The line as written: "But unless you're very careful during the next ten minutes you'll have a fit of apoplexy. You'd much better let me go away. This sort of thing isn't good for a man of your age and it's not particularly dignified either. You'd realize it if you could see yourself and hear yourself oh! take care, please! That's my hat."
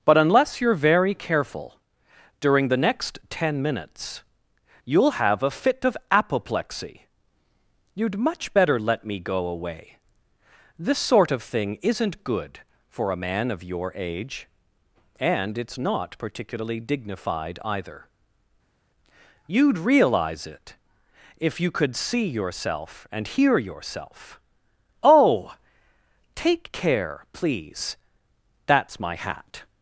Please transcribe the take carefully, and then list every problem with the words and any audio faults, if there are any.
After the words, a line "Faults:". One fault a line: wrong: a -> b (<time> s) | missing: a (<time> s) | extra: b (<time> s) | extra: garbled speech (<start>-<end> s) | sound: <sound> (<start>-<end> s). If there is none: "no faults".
"But unless you're very careful during the next ten minutes you'll have a fit of apoplexy. You'd much better let me go away. This sort of thing isn't good for a man of your age and it's not particularly dignified either. You'd realize it if you could see yourself and hear yourself oh! take care, please! That's my hat."
Faults:
no faults